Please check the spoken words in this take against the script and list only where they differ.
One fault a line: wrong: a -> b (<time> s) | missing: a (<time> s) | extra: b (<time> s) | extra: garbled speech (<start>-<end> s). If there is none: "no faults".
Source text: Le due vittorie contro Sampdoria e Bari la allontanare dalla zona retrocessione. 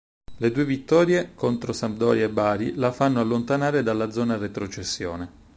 extra: fanno (2.9 s)